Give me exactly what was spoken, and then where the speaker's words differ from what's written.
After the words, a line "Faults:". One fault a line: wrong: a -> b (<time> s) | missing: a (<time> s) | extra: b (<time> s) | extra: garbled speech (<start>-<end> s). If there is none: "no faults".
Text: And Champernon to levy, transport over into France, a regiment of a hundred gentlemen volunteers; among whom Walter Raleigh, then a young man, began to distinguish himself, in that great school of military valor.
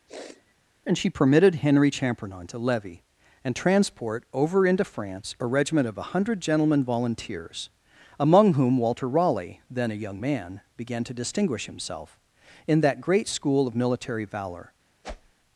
And she permitted Henry Champernon to levy, and transport over into France, a regiment of a hundred gentlemen volunteers; among whom Walter Raleigh, then a young man, began to distinguish himself, in that great school of military valor.
Faults:
extra: she permitted Henry (1.0 s)
extra: and (3.4 s)